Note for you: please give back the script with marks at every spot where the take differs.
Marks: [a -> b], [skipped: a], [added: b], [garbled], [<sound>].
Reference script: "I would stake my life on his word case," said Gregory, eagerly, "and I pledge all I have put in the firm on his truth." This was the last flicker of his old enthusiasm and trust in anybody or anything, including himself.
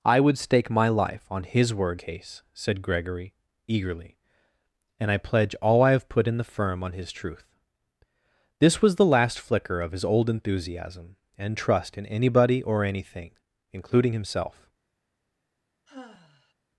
"I would stake my life on his word case," said Gregory, eagerly, "and I pledge all I have put in the firm on his truth." This was the last flicker of his old enthusiasm and trust in anybody or anything, including himself. [sigh]